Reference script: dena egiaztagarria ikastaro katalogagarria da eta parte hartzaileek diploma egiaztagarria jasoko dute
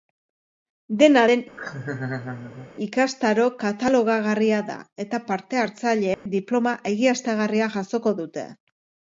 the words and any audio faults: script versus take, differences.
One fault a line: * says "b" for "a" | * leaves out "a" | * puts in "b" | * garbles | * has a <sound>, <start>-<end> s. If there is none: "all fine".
* says "den" for "egiaztagarria"
* has a laugh, 1.6-2.7 s
* has a dropout, 6.1-6.3 s